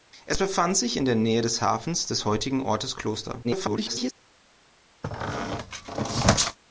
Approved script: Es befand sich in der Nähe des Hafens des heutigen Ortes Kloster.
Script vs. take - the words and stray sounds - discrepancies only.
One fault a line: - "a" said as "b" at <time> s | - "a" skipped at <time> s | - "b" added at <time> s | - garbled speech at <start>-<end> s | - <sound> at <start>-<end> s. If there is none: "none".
- garbled speech at 3.4-4.1 s
- squeak at 5.0-6.6 s